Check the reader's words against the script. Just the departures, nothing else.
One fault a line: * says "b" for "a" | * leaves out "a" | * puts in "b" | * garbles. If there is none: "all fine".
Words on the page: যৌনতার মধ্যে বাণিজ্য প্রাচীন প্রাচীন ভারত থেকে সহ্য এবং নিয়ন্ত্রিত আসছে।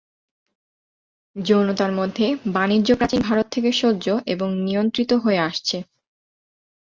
* leaves out "প্রাচীন"
* puts in "হয়ে"